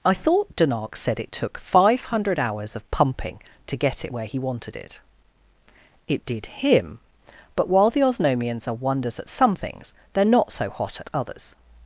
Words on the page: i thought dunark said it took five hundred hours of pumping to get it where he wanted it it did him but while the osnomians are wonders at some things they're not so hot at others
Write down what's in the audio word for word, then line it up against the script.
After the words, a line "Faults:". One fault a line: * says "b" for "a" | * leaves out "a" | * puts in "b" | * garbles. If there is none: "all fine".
i thought dunark said it took five hundred hours of pumping to get it where he wanted it it did him but while the osnomians are wonders at some things they're not so hot at others
Faults:
all fine